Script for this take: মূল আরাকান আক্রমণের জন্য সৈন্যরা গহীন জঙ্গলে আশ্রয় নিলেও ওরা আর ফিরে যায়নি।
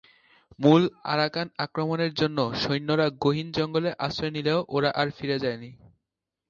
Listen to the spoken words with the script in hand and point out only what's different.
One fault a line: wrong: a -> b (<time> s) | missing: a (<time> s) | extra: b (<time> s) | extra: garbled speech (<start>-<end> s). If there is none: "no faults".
no faults